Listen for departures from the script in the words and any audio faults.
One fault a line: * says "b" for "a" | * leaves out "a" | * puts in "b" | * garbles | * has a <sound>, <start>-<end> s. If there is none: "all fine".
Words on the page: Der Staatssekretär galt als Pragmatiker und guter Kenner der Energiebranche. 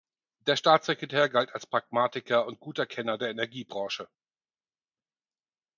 all fine